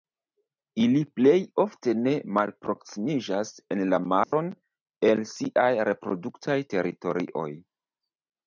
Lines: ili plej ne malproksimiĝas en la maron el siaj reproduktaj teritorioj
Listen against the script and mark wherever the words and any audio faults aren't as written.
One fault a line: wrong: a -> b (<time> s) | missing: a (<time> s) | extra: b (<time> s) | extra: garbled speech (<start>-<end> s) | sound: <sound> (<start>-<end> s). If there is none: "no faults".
extra: ofte (1.6 s)
sound: dropout (4.2-4.3 s)